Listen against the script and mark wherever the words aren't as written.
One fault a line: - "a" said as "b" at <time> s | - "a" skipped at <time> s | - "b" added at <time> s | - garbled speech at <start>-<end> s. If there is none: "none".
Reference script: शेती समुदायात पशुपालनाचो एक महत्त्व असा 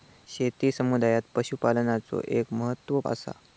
none